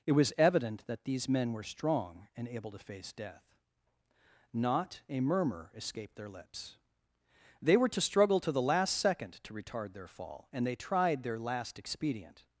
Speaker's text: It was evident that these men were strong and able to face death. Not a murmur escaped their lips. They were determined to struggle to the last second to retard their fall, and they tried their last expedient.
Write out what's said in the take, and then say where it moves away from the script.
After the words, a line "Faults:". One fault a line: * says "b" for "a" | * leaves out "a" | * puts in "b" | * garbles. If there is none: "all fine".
It was evident that these men were strong and able to face death. Not a murmur escaped their lips. They were to struggle to the last second to retard their fall, and they tried their last expedient.
Faults:
* leaves out "determined"